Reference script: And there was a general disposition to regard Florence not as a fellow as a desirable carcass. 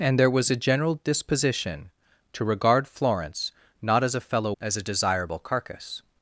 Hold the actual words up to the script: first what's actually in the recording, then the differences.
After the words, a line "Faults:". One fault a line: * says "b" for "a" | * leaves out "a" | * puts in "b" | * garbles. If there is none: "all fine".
And there was a general disposition to regard Florence not as a fellow as a desirable carcass.
Faults:
all fine